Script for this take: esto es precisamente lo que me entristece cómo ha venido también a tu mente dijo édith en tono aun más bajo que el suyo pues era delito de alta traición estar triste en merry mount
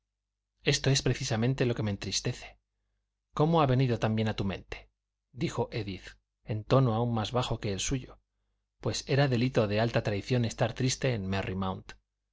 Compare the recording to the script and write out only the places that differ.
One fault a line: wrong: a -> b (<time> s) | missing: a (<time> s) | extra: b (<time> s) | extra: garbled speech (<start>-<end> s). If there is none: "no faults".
no faults